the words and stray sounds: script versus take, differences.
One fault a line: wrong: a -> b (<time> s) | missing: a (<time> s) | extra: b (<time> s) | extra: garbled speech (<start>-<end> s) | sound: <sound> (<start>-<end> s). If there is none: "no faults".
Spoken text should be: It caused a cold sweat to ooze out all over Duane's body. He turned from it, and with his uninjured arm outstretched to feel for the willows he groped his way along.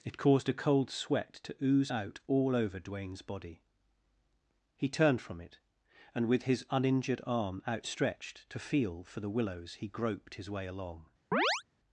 sound: chirp (11.3-11.6 s)